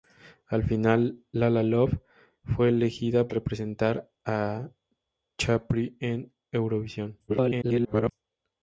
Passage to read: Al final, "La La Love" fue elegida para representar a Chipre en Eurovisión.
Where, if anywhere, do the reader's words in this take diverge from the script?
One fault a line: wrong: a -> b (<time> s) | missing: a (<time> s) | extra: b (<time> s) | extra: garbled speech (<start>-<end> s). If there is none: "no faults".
missing: para (3.3 s)
extra: garbled speech (7.3-8.1 s)